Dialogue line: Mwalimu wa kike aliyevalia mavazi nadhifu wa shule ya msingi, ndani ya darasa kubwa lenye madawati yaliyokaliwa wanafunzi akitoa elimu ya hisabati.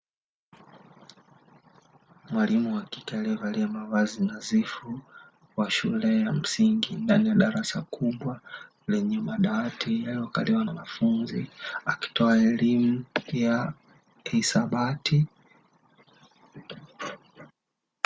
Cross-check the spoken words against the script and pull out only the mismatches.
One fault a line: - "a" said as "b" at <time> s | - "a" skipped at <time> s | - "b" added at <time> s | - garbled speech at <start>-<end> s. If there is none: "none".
none